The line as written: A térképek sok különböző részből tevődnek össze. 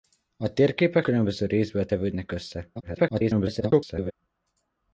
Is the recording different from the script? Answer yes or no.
yes